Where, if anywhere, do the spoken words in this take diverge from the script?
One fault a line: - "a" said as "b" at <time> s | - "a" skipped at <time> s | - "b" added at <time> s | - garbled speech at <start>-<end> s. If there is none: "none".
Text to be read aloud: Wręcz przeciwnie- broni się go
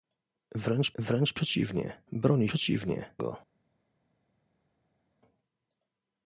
- "wręcz" added at 1.0 s
- "się" said as "przeciwnie" at 2.4 s